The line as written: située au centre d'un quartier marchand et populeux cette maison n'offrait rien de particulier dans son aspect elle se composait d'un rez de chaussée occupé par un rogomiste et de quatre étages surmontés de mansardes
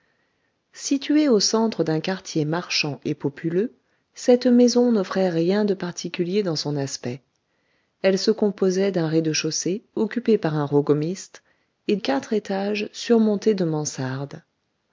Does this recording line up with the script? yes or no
no